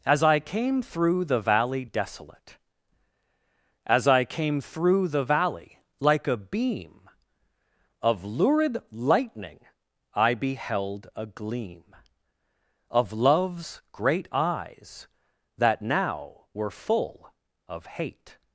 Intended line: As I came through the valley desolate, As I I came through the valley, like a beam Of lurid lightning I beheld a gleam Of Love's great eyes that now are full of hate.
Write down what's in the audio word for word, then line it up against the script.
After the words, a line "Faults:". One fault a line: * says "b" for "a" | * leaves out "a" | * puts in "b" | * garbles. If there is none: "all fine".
As I came through the valley desolate, As I came through the valley, like a beam Of lurid lightning I beheld a gleam Of Love's great eyes that now were full of hate.
Faults:
* leaves out "I"
* says "were" for "are"